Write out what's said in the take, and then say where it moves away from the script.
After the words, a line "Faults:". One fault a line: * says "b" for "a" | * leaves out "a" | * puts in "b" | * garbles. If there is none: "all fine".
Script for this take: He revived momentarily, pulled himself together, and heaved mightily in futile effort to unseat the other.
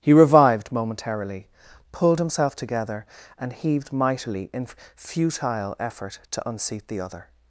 He revived momentarily, pulled himself together, and heaved mightily in futile effort to unseat the other.
Faults:
all fine